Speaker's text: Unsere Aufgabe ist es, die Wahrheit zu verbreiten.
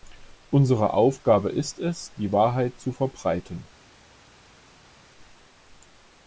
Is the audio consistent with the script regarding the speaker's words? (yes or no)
yes